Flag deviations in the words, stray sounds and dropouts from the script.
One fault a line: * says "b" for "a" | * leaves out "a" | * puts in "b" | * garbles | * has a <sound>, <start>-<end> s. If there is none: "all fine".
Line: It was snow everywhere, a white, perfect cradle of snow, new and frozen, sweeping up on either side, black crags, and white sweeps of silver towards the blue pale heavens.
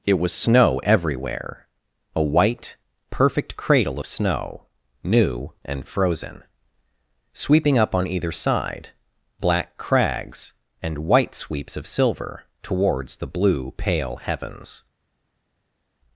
all fine